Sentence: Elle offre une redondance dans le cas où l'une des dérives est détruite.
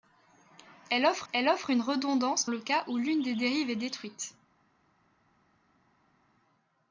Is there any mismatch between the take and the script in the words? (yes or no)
yes